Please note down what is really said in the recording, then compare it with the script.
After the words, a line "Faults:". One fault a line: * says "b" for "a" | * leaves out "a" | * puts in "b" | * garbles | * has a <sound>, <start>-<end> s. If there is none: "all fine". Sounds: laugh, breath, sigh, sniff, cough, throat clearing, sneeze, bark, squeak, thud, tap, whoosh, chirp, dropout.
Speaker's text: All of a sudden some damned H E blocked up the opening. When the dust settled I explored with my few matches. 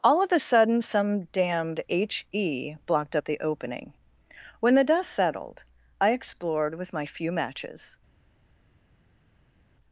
All of a sudden some damned H E blocked up the opening. When the dust settled I explored with my few matches.
Faults:
all fine